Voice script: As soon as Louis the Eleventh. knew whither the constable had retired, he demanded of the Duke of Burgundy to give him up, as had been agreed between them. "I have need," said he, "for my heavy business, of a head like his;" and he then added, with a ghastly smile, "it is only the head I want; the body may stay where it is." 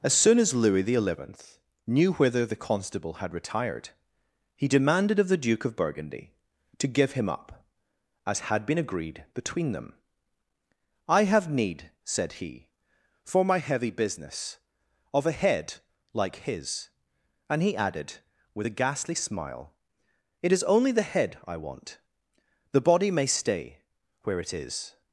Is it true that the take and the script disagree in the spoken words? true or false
true